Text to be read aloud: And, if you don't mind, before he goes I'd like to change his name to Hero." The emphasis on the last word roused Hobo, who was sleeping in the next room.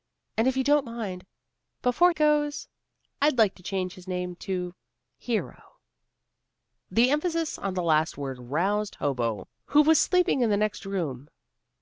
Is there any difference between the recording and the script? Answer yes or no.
yes